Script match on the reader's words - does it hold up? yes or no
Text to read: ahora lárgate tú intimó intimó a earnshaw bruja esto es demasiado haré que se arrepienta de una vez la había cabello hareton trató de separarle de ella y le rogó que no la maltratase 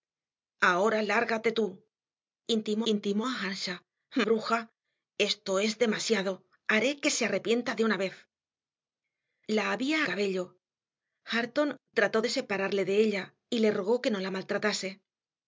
yes